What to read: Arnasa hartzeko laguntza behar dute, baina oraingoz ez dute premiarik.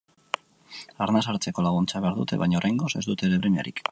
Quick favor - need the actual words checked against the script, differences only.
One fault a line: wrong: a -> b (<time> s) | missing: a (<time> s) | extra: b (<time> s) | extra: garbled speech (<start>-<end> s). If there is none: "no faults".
no faults